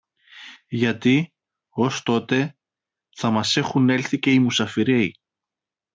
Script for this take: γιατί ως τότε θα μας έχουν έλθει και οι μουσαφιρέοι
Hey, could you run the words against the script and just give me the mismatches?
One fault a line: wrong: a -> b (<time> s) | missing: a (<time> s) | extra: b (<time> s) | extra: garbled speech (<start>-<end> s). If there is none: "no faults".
no faults